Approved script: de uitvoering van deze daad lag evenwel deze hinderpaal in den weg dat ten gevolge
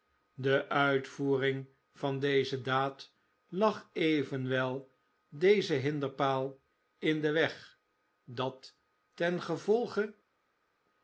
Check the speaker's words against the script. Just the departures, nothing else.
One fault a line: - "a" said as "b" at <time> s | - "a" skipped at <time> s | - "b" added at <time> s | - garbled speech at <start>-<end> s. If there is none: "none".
none